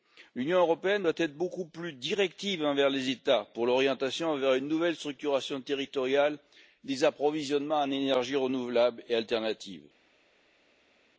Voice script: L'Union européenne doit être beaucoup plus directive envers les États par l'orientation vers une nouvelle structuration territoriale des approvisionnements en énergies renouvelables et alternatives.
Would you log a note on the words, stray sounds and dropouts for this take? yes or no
yes